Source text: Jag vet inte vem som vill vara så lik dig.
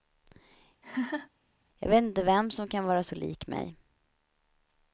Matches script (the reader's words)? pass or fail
fail